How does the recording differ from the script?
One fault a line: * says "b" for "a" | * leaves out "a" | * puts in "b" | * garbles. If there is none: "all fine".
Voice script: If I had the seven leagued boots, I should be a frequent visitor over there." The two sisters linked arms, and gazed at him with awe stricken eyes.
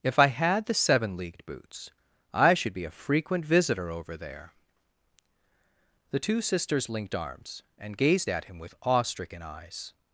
all fine